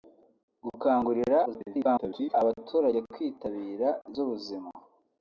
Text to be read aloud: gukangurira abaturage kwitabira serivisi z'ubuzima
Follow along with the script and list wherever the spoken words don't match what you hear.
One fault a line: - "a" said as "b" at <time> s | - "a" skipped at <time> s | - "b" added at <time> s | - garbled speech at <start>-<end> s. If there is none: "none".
- garbled speech at 1.4-2.3 s
- "serivisi" skipped at 3.9 s